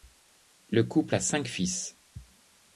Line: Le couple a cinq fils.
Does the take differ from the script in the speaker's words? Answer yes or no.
no